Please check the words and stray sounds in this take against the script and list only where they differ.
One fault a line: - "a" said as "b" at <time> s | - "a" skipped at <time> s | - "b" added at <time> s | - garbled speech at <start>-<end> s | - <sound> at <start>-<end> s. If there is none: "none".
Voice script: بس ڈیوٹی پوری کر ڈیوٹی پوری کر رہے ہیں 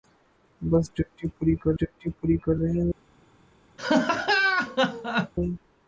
- laugh at 3.8-5.3 s